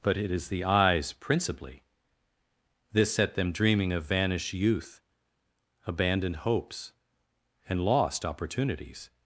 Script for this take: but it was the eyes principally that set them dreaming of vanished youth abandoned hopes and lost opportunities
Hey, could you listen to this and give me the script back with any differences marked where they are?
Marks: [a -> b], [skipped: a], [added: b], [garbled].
but it [was -> is] the eyes principally [that -> this] set them dreaming of vanished youth abandoned hopes and lost opportunities